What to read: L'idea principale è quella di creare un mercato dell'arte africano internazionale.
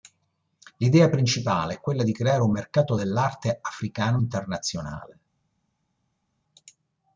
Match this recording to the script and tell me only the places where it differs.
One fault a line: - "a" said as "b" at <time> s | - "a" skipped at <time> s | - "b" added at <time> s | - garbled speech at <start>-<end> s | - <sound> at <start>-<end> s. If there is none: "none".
none